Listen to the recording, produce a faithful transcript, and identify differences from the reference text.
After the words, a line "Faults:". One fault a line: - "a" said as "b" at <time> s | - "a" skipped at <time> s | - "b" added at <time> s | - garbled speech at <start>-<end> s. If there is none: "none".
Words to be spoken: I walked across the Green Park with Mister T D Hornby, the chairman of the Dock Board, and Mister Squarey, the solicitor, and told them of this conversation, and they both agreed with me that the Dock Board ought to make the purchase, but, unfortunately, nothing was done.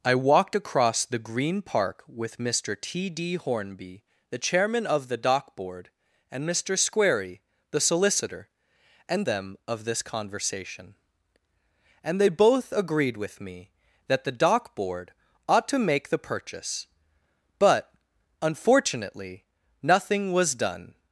I walked across the Green Park with Mister T D Hornby, the chairman of the Dock Board, and Mister Squarey, the solicitor, and them of this conversation, and they both agreed with me that the Dock Board ought to make the purchase, but, unfortunately, nothing was done.
Faults:
- "told" skipped at 9.3 s